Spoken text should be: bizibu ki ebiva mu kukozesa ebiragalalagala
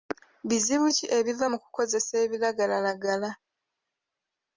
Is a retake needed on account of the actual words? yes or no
no